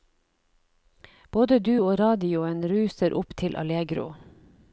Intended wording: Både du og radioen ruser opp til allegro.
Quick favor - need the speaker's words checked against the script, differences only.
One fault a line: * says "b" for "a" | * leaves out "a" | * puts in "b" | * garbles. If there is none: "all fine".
all fine